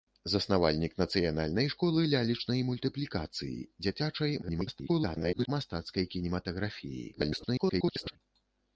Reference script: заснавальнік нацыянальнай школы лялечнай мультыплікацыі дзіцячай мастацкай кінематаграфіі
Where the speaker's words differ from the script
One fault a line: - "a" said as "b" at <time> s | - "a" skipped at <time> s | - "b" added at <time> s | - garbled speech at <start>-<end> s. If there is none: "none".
- garbled speech at 4.4-5.5 s
- garbled speech at 7.1-8.2 s